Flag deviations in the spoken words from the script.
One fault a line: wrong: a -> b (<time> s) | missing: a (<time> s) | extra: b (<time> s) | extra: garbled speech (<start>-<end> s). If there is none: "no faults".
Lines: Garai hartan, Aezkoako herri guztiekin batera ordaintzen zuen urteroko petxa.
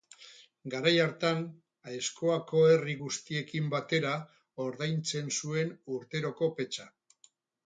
no faults